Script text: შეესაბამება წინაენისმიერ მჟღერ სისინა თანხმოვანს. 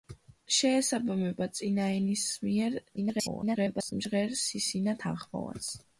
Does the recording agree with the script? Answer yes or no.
no